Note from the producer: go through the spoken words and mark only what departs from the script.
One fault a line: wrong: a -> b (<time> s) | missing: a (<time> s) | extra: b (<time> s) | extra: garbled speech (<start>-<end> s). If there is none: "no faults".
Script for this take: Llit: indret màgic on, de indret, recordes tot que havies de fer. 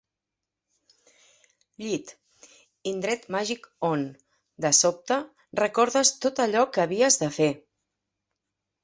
wrong: indret -> sobte (4.8 s)
extra: allò (6.5 s)